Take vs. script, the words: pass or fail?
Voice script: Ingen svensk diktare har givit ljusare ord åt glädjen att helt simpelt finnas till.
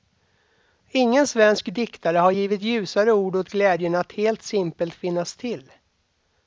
pass